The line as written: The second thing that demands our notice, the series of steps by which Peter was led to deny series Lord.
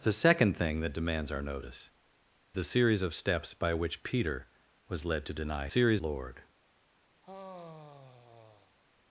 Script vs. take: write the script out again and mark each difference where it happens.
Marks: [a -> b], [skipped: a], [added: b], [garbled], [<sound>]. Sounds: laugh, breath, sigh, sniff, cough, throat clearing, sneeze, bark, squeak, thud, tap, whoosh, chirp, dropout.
The second thing that demands our notice, the series of steps by which Peter was led to deny series Lord. [sigh]